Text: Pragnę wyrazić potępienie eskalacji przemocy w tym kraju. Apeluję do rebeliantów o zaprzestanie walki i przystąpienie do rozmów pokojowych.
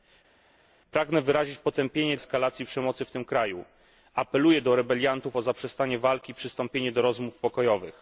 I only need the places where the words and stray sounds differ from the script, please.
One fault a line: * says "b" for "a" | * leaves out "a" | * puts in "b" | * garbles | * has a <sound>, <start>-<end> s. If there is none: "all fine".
all fine